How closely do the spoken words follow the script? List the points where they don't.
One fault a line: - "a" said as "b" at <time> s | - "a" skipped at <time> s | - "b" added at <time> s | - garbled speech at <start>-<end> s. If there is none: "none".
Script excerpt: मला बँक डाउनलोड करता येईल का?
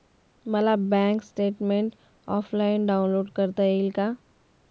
- "स्टेटमेन्ट ऑफलाईन" added at 1.2 s